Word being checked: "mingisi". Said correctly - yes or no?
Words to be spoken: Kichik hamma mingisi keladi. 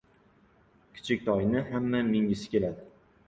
yes